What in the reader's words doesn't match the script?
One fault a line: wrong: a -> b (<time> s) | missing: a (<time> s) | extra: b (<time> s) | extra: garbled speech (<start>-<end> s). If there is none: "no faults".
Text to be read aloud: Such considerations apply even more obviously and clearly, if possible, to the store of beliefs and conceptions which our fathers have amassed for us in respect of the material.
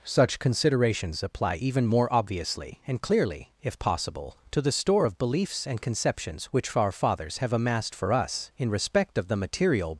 no faults